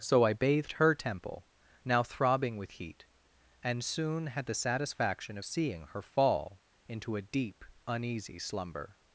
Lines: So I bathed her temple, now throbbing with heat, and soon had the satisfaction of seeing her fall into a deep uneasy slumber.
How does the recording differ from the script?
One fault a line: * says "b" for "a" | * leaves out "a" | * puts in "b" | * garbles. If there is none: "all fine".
all fine